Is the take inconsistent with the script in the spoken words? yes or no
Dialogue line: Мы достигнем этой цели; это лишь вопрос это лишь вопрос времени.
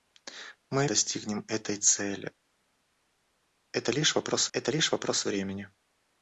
no